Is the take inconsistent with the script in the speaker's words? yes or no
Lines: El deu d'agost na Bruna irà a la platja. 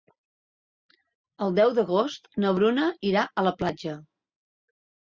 no